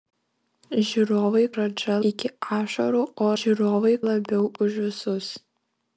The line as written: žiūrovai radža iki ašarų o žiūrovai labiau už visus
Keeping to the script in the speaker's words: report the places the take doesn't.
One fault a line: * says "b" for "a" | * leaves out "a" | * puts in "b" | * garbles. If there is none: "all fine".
all fine